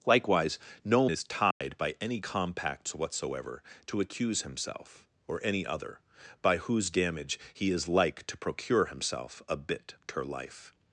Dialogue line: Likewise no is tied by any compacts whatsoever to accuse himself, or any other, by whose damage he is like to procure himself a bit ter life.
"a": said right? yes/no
yes